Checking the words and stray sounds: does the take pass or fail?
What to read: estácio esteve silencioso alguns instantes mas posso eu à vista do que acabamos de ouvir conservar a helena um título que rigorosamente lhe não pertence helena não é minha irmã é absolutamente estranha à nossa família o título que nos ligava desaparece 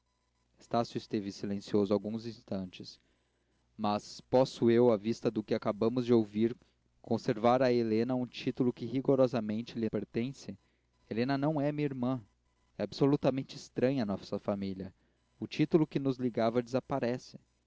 fail